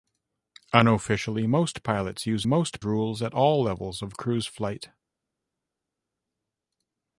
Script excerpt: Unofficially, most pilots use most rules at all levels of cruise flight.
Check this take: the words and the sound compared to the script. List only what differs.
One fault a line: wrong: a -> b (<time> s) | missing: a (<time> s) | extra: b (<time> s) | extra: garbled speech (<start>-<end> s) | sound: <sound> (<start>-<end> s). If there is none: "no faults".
no faults